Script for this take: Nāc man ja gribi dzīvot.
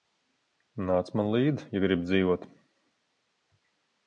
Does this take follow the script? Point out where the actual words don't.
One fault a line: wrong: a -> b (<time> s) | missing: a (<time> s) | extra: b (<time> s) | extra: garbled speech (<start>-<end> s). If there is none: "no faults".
extra: līdzi (1.4 s)